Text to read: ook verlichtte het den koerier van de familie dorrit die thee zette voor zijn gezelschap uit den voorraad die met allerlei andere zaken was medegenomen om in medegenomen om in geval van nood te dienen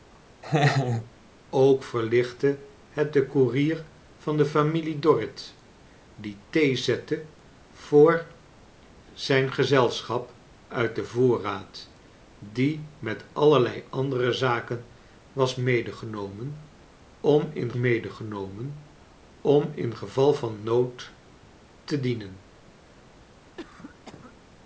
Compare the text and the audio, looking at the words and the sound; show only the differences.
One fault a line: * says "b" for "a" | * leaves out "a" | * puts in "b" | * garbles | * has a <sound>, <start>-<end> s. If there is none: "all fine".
* has a laugh, 0.4-1.1 s
* has a cough, 23.6-24.3 s